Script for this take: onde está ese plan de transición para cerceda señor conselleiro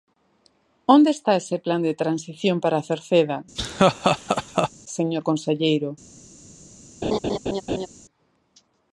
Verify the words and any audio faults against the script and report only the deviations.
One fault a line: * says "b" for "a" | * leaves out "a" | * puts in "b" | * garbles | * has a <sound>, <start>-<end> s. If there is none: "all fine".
* has a laugh, 3.6-4.7 s
* has a laugh, 7.0-7.9 s